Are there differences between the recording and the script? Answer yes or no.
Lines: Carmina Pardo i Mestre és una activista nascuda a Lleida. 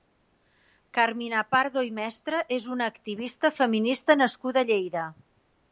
yes